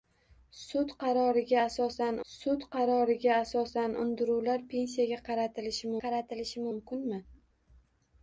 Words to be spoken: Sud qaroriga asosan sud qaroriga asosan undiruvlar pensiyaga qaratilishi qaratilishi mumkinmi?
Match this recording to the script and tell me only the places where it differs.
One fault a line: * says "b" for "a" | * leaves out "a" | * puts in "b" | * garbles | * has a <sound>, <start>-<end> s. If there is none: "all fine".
all fine